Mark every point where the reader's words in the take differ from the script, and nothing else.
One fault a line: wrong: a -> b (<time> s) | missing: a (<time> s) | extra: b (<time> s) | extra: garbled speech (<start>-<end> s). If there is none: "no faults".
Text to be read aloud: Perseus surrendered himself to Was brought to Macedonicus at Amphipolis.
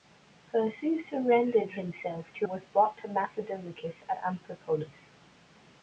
no faults